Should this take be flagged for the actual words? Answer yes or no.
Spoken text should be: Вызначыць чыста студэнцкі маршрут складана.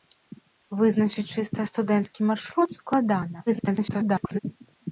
yes